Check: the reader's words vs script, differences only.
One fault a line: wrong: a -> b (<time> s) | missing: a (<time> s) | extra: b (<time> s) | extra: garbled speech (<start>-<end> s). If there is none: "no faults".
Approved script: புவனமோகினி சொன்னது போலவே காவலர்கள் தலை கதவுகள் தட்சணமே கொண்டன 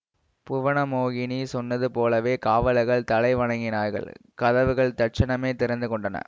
extra: வணங்கினார்கள் (3.4 s)
extra: திறந்து (5.5 s)